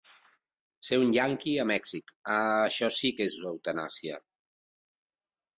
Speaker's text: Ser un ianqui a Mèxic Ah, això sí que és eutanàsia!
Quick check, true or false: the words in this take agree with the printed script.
true